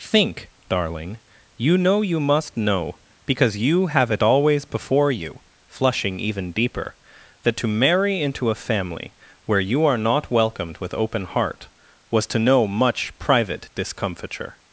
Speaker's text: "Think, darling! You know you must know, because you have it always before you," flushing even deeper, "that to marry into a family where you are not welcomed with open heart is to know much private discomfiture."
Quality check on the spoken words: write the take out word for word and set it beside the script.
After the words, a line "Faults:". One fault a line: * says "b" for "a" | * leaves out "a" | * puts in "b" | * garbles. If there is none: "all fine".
"Think, darling! You know you must know, because you have it always before you," flushing even deeper, "that to marry into a family where you are not welcomed with open heart was to know much private discomfiture."
Faults:
* says "was" for "is"